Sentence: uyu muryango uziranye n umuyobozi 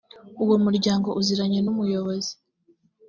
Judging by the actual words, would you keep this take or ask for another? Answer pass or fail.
fail